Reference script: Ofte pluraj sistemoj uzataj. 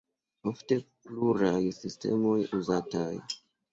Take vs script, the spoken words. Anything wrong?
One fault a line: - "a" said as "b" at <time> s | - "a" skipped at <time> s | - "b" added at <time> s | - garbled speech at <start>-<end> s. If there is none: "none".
none